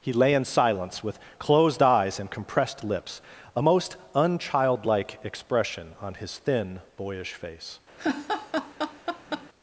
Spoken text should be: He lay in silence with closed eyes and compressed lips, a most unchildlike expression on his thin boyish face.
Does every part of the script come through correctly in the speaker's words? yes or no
yes